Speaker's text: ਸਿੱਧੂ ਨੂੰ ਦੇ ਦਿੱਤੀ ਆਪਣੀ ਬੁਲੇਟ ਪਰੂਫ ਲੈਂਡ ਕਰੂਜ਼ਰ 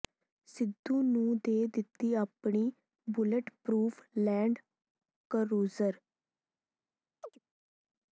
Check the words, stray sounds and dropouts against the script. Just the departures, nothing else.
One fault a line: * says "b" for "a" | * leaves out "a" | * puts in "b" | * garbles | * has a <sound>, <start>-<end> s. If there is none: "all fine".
* has a chirp, 7.2-7.4 s